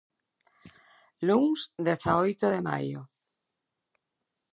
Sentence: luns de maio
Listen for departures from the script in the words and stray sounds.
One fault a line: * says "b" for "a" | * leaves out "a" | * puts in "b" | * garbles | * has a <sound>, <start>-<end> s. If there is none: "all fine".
* puts in "dezaoito"